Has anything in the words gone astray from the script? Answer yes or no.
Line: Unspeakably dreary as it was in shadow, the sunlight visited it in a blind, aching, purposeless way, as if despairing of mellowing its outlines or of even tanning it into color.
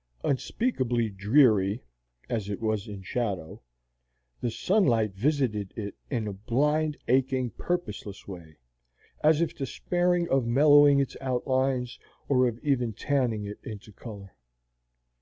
no